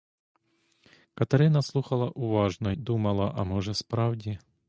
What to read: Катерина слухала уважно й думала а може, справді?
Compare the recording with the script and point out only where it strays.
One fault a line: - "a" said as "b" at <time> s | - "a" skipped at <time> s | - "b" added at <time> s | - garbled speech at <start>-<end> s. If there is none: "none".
- "й" skipped at 2.7 s